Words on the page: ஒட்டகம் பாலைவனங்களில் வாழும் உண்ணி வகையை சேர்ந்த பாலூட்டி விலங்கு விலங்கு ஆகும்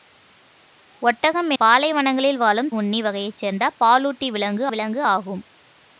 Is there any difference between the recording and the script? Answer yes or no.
no